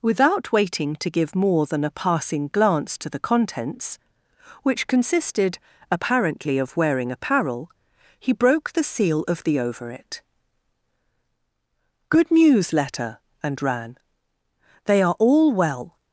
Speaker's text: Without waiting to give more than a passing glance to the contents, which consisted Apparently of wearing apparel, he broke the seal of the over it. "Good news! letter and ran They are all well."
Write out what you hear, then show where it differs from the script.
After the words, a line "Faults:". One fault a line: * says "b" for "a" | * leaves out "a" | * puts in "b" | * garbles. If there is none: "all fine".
Without waiting to give more than a passing glance to the contents, which consisted Apparently of wearing apparel, he broke the seal of the over it. "Good news! letter and ran They are all well."
Faults:
all fine